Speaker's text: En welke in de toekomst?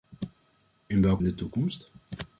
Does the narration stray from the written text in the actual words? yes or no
no